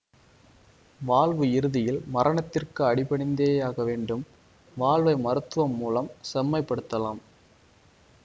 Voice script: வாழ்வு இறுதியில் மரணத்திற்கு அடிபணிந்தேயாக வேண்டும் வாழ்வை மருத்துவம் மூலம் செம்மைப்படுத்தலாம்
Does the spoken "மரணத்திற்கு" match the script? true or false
true